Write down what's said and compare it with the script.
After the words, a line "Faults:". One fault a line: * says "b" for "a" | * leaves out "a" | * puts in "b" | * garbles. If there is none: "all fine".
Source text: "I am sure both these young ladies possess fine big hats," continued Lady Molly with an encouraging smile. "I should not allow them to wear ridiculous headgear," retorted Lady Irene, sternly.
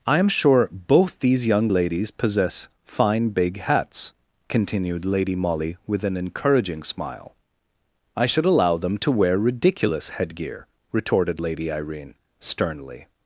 "I am sure both these young ladies possess fine big hats," continued Lady Molly with an encouraging smile. "I should allow them to wear ridiculous headgear," retorted Lady Irene, sternly.
Faults:
* leaves out "not"